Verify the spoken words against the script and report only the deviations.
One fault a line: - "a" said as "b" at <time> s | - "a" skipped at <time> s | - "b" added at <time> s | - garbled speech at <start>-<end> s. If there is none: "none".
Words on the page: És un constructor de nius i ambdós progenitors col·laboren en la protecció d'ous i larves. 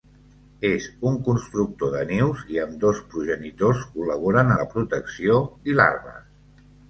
- "en" skipped at 4.5 s
- "d'ous" skipped at 5.4 s